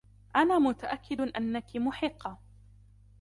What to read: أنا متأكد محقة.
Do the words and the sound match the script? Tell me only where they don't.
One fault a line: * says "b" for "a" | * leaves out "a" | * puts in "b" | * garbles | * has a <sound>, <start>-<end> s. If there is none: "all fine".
* puts in "أنكِ"